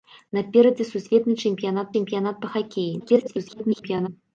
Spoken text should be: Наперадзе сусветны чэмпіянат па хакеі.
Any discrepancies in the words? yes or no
yes